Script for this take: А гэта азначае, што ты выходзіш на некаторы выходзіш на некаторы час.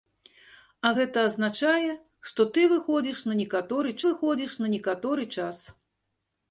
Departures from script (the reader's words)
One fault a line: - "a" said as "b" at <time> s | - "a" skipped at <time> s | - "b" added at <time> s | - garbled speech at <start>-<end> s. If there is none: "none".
none